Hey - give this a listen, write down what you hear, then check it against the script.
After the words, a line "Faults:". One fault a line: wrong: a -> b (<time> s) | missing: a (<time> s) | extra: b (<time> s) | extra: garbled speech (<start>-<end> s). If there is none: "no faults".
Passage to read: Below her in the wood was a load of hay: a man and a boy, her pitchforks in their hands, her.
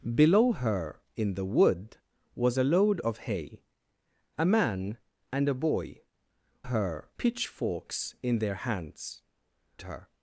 Below her in the wood was a load of hay: a man and a boy, her pitchforks in their hands, her.
Faults:
no faults